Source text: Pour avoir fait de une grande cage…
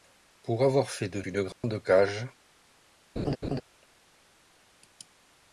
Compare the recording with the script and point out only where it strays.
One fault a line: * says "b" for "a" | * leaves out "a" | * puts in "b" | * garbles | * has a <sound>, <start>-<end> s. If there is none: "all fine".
* has a dropout, 1.5-1.6 s
* has a laugh, 3.2-3.6 s